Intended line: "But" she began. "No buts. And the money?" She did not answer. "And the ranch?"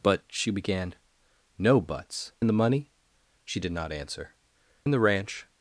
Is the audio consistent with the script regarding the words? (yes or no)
yes